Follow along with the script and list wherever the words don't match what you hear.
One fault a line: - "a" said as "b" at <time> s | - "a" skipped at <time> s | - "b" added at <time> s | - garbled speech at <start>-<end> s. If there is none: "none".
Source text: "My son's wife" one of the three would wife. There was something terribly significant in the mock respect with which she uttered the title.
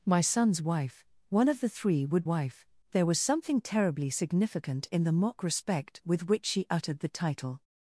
none